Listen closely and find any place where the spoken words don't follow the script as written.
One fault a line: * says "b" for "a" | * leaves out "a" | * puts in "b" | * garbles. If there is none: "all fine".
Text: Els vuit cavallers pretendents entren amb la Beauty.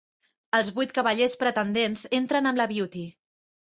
all fine